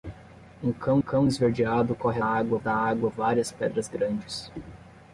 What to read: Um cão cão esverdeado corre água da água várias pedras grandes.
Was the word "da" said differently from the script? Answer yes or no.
no